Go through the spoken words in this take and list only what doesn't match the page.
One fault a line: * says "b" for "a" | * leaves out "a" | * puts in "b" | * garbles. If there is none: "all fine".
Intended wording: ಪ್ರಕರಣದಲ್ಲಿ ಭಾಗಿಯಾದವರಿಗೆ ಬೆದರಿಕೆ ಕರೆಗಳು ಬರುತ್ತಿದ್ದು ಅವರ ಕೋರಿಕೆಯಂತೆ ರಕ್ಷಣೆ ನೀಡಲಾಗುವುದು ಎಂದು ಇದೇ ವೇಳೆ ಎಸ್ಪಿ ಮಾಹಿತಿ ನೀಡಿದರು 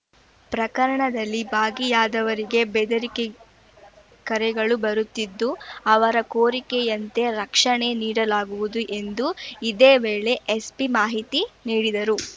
all fine